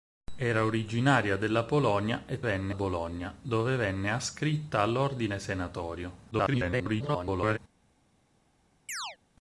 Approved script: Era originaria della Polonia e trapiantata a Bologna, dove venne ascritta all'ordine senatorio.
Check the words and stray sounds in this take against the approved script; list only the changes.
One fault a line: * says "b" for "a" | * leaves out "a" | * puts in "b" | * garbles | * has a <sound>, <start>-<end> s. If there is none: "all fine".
* says "venne" for "trapiantata"
* garbles
* has a chirp, 8.9-9.2 s